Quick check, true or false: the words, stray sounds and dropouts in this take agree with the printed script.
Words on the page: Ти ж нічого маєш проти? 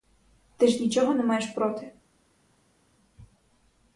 false